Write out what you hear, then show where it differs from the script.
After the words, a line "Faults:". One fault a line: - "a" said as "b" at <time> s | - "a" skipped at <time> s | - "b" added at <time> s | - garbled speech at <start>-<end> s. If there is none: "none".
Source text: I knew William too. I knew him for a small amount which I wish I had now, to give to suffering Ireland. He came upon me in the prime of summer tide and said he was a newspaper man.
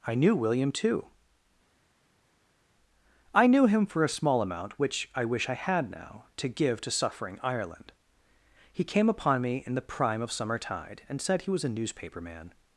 I knew William too. I knew him for a small amount which I wish I had now, to give to suffering Ireland. He came upon me in the prime of summer tide and said he was a newspaper man.
Faults:
none